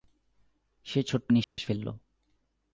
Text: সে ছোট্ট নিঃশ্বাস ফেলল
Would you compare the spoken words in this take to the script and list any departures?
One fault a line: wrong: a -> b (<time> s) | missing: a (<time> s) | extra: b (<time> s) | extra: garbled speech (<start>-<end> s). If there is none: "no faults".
no faults